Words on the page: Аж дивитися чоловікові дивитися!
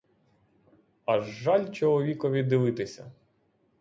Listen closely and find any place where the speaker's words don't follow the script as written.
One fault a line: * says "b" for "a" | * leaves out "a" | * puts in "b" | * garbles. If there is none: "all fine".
* says "жаль" for "дивитися"